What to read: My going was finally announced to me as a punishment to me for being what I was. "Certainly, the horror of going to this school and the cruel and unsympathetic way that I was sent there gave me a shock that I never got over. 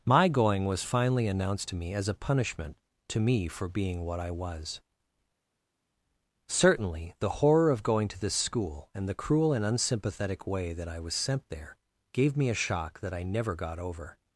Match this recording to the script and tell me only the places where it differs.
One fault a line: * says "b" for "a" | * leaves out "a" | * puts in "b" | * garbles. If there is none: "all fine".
all fine